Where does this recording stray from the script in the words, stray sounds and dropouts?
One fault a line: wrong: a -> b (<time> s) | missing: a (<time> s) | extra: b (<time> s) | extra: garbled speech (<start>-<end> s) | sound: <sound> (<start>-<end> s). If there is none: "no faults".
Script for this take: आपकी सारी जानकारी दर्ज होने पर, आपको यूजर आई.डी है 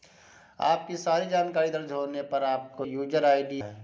no faults